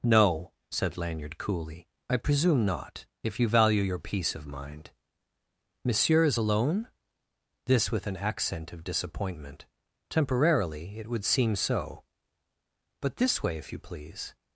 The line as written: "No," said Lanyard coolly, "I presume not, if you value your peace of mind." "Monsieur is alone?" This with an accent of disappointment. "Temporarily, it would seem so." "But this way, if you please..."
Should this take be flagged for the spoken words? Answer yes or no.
no